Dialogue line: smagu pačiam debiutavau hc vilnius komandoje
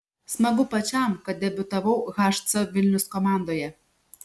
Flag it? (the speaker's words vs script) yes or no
yes